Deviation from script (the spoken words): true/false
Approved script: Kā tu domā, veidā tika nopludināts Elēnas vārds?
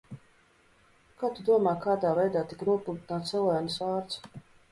true